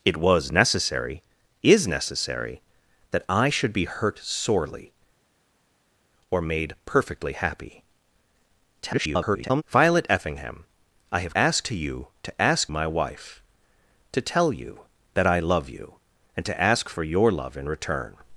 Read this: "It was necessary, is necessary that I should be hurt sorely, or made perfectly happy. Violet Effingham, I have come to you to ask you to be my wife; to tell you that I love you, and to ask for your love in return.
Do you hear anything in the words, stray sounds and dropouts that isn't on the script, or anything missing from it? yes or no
yes